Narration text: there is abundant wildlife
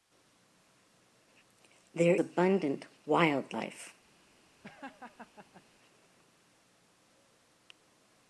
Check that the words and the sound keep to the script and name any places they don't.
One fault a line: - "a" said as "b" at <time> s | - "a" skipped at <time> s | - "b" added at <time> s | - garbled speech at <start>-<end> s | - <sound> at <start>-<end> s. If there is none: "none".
- "is" skipped at 2.1 s
- laugh at 4.6-5.6 s